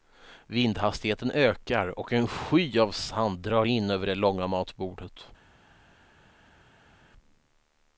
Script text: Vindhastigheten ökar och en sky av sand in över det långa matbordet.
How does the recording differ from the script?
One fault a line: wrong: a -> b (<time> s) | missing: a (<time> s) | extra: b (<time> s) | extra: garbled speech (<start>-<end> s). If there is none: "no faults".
extra: drar (3.4 s)